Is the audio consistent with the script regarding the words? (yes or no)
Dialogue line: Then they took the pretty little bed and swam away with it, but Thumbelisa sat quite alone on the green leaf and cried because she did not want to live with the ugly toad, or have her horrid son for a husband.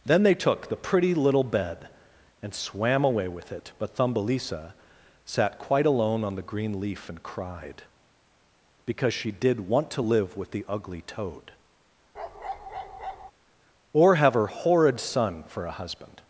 no